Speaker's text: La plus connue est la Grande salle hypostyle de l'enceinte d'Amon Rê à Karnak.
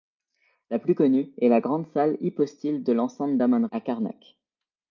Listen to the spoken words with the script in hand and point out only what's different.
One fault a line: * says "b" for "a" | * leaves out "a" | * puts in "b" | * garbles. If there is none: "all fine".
* leaves out "Rê"